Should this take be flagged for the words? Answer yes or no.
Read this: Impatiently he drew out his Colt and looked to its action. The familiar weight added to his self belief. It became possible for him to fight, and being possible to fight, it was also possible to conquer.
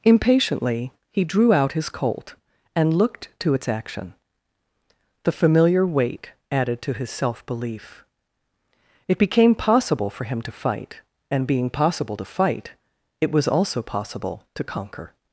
no